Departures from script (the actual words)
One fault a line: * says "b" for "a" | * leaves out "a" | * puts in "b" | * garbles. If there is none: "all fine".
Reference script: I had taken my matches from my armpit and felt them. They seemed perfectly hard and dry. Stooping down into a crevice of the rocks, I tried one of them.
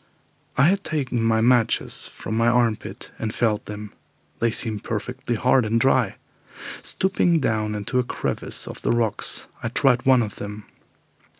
all fine